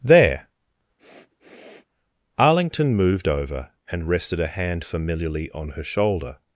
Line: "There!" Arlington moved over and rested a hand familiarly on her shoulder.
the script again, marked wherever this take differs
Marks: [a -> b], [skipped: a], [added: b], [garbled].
"There!" Arlington moved over and rested a hand familiarly on her shoulder.